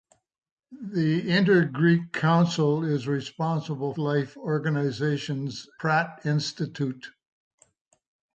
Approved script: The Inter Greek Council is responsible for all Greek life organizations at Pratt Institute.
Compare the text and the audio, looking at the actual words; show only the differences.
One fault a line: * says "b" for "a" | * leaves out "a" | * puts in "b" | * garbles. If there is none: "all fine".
* leaves out "for all Greek"
* leaves out "at"